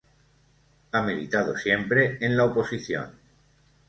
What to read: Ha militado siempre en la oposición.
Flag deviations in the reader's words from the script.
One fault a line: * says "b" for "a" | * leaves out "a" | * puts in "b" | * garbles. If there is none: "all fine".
all fine